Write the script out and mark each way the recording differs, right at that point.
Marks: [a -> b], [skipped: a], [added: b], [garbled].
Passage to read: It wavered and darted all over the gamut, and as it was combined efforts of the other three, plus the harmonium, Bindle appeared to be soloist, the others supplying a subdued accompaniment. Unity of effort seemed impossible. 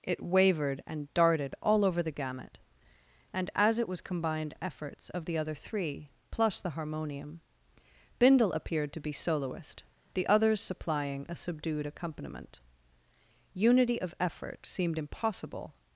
It wavered and darted all over the gamut, and as it was combined efforts of the other three, plus the harmonium, Bindle appeared to be soloist, the others supplying a subdued accompaniment. Unity of effort seemed impossible.